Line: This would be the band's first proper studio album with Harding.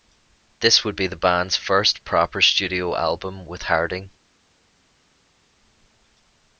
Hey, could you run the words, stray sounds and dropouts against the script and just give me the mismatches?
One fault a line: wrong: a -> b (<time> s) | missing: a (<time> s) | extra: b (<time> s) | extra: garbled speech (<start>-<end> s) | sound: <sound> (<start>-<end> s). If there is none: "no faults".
no faults